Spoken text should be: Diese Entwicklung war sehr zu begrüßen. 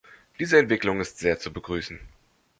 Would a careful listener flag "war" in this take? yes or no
yes